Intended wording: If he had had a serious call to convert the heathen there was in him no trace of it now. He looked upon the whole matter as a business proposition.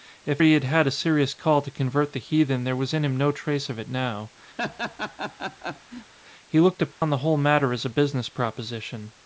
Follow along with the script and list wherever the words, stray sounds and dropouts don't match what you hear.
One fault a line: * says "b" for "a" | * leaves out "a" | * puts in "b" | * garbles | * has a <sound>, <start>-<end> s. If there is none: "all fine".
* has a laugh, 4.6-6.1 s
* has a dropout, 6.9-7.0 s